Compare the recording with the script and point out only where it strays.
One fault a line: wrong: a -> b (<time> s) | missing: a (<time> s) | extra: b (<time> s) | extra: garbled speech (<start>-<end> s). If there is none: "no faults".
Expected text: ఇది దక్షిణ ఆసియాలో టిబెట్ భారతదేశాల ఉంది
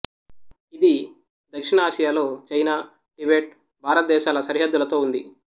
extra: చైనా (2.5 s)
extra: సరిహద్దులతో (4.4 s)